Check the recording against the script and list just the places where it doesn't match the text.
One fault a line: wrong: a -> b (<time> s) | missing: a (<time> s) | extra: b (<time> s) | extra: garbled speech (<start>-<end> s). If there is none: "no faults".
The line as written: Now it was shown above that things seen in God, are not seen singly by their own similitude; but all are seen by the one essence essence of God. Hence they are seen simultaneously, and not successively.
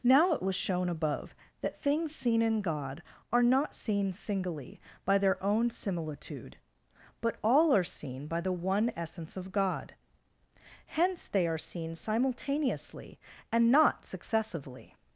missing: essence (9.4 s)